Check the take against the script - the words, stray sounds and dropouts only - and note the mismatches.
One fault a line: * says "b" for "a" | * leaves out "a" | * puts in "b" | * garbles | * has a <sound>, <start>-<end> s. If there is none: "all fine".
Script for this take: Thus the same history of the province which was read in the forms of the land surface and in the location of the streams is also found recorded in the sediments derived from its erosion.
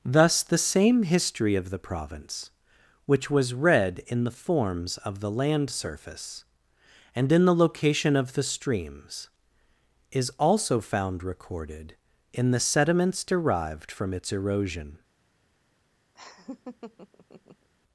* has a laugh, 16.1-17.7 s